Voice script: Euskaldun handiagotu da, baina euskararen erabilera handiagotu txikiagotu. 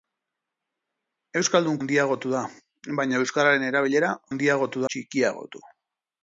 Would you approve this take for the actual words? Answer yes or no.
yes